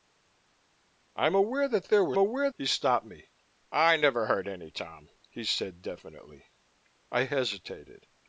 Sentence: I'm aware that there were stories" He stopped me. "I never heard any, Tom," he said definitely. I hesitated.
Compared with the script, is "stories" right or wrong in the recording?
wrong